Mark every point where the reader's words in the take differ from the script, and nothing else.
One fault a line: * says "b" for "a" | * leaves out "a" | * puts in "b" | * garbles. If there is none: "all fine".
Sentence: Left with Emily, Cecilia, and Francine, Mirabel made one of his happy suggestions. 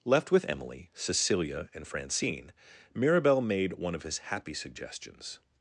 all fine